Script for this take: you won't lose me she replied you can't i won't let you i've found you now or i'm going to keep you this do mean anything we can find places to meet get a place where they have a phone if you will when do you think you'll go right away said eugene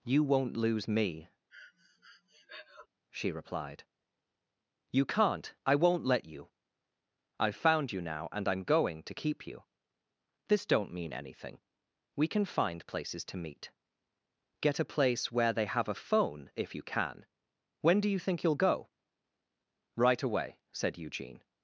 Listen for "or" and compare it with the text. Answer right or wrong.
wrong